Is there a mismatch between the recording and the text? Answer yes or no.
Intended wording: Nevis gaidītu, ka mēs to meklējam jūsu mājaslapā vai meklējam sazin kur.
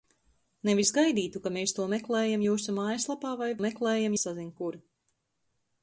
no